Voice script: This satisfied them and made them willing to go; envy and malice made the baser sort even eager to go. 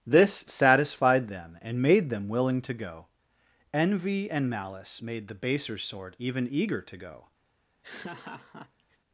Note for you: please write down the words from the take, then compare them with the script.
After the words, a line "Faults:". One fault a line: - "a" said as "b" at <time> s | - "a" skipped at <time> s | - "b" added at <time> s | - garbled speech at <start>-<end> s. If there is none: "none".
This satisfied them and made them willing to go; envy and malice made the baser sort even eager to go.
Faults:
none